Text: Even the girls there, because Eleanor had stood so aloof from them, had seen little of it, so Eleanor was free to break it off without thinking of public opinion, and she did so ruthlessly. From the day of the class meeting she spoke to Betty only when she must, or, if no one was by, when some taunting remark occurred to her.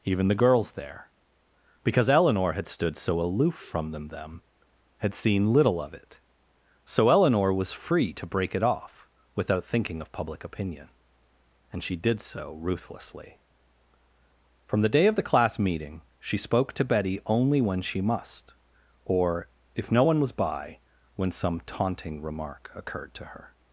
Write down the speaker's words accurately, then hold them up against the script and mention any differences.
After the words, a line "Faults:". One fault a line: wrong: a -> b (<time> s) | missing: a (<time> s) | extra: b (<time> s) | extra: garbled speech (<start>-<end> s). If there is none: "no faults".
Even the girls there, because Eleanor had stood so aloof from them them, had seen little of it, so Eleanor was free to break it off without thinking of public opinion, and she did so ruthlessly. From the day of the class meeting she spoke to Betty only when she must, or, if no one was by, when some taunting remark occurred to her.
Faults:
extra: them (4.1 s)